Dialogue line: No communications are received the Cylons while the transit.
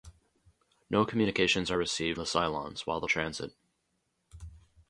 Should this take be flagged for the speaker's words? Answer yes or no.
no